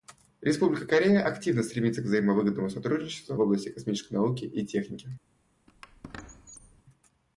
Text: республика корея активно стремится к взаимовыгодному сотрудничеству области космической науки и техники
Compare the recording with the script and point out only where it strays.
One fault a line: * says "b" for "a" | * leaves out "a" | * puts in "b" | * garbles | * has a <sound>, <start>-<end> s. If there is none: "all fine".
* has a squeak, 5.7-6.8 s